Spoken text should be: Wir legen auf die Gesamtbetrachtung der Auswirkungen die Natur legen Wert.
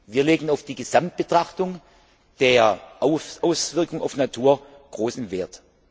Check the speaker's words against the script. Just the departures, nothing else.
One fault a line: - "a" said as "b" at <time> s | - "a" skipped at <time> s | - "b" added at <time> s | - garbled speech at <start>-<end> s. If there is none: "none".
- "auf" added at 4.0 s
- "legen" said as "großen" at 4.9 s